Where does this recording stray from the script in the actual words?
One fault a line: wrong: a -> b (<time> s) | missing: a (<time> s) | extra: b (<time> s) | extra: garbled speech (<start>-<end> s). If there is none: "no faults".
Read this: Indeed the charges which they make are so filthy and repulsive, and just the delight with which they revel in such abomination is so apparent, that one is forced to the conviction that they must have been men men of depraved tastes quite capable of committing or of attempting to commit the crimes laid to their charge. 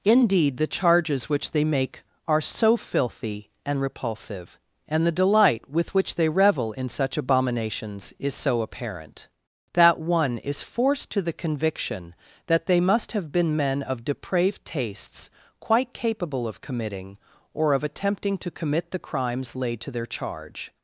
missing: just (5.0 s)
wrong: abomination -> abominations (7.2 s)
missing: men (13.8 s)